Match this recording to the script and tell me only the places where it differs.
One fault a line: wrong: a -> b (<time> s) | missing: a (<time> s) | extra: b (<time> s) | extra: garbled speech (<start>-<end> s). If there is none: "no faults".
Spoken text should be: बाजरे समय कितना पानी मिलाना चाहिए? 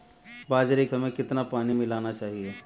no faults